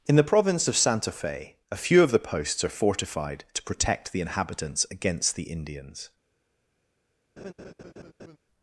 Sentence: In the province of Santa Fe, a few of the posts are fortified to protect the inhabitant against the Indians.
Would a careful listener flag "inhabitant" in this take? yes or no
yes